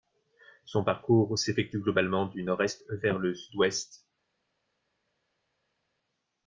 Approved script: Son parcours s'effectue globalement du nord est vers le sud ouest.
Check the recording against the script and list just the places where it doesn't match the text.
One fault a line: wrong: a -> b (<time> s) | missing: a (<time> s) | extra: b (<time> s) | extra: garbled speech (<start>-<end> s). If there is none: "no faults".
no faults